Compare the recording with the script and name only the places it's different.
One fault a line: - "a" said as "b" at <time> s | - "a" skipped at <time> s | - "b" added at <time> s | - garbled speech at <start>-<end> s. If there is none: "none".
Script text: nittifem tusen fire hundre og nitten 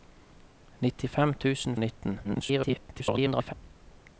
- "fire hundre" skipped at 1.8 s
- garbled speech at 2.2-3.5 s